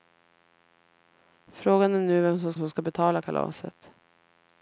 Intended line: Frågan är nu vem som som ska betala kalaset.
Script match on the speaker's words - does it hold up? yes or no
yes